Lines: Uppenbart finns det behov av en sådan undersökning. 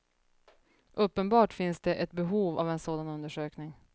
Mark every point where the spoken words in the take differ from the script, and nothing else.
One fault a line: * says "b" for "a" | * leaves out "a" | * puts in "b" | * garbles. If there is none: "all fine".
* puts in "ett"